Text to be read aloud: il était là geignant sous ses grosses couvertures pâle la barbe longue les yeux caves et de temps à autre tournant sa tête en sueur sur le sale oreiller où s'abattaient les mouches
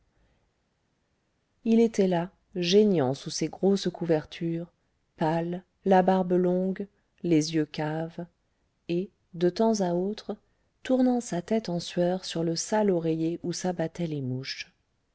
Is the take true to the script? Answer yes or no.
yes